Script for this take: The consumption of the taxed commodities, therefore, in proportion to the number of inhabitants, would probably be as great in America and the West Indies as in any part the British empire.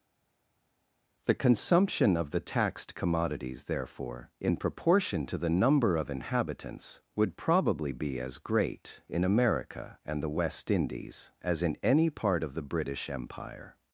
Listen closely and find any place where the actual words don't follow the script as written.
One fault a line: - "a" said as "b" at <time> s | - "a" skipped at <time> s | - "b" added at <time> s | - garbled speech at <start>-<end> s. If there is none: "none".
- "of" added at 12.4 s